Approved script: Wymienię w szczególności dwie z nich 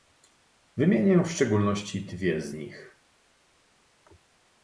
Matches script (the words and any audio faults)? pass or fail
pass